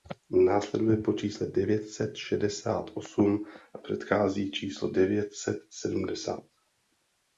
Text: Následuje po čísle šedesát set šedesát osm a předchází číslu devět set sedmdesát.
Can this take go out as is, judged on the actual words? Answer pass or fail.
fail